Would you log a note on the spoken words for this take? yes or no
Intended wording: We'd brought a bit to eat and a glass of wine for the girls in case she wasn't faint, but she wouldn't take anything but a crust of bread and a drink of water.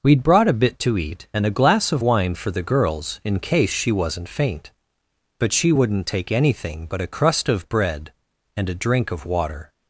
no